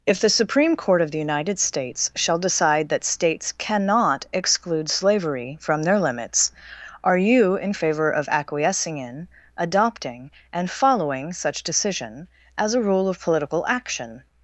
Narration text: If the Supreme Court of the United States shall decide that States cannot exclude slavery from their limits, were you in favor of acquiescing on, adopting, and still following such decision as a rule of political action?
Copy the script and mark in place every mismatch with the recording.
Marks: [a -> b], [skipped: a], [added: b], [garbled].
If the Supreme Court of the United States shall decide that States cannot exclude slavery from their limits, [were -> are] you in favor of acquiescing [on, -> in] adopting, and [skipped: still] following such decision as a rule of political action?